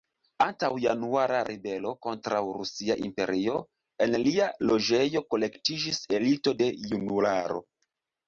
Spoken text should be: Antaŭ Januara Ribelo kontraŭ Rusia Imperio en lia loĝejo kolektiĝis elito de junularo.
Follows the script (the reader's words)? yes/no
yes